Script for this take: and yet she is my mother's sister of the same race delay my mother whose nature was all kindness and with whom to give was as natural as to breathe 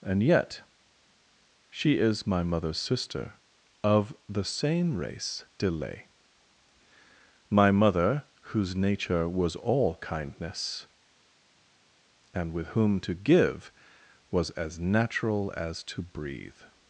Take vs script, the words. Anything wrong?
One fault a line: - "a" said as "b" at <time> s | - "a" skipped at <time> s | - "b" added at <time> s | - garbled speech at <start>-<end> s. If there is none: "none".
none